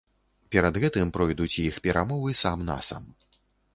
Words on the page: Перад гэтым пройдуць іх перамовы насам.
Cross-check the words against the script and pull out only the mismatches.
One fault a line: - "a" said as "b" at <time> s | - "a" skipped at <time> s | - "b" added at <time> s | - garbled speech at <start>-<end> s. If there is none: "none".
- "сам" added at 2.4 s